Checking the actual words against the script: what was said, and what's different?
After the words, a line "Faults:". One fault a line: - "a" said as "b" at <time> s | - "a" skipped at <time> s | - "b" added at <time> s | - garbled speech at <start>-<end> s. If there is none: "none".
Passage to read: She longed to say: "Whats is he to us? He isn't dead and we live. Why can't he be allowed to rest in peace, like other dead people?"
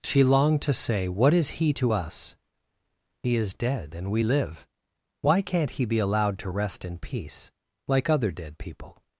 She longed to say: "What is he to us? He is dead and we live. Why can't he be allowed to rest in peace, like other dead people?"
Faults:
- "Whats" said as "What" at 1.1 s
- "isn't" said as "is" at 3.4 s